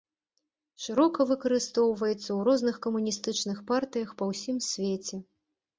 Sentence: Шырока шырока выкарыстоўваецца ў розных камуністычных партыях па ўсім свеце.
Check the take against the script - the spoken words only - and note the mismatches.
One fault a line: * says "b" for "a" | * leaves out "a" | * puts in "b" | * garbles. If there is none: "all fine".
* leaves out "шырока"